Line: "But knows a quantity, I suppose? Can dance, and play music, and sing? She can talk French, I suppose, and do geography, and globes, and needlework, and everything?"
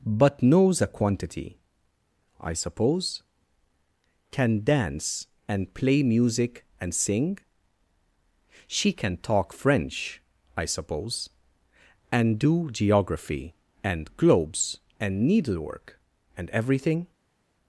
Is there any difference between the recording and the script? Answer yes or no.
no